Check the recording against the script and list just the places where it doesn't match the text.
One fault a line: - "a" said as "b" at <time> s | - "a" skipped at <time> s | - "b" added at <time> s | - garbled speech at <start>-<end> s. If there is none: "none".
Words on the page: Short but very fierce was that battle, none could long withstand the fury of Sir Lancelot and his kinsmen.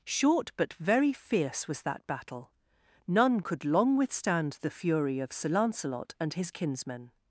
none